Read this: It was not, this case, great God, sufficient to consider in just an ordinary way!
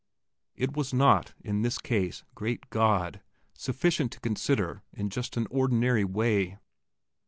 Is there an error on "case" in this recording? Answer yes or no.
no